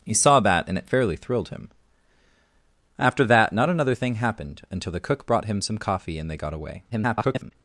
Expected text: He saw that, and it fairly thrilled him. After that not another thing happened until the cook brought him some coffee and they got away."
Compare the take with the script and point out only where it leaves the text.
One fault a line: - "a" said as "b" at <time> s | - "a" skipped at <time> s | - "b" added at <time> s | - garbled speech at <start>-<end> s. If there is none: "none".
- garbled speech at 6.9-7.5 s